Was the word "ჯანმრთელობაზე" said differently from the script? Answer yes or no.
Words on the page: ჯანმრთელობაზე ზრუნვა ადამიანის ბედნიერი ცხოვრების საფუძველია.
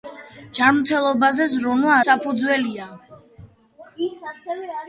no